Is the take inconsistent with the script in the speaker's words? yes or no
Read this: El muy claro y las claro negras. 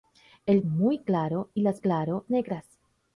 no